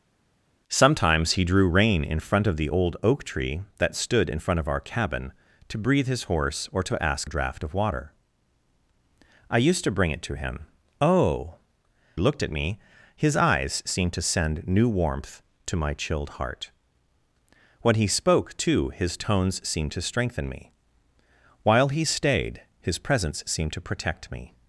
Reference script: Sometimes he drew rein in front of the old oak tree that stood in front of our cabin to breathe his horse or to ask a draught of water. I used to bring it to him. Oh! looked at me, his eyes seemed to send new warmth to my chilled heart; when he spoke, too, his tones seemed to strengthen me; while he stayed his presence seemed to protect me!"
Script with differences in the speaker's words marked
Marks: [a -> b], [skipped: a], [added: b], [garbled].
Sometimes he drew rein in front of the old oak tree that stood in front of our cabin to breathe his horse or to ask a draught of water. I used to bring it to him. Oh! looked at me, his eyes seemed to send new warmth to my chilled heart; when he spoke, too, his tones seemed to strengthen me; while he stayed his presence seemed to protect me!"